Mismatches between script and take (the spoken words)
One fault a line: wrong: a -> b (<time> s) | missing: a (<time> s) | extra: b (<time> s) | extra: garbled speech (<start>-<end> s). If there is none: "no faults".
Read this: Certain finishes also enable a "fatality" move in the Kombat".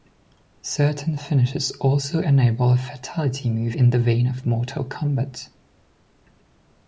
extra: vein of Mortal (4.0 s)